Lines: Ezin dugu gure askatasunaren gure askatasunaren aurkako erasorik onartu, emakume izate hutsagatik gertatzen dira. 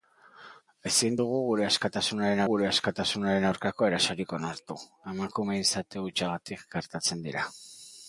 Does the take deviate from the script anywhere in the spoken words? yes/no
no